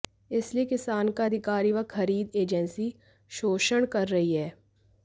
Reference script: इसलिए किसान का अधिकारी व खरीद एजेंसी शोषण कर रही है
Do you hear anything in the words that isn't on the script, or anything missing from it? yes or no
no